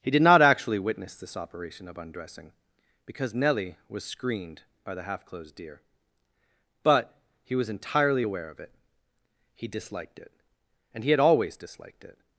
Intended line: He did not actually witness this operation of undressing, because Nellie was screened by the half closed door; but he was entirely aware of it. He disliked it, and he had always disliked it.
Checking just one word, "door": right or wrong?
wrong